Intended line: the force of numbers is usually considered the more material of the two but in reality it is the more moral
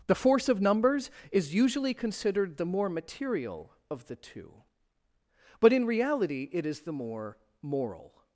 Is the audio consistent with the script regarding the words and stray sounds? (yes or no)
yes